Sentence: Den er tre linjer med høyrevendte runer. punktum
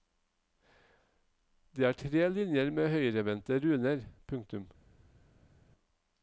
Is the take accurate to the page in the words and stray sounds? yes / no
no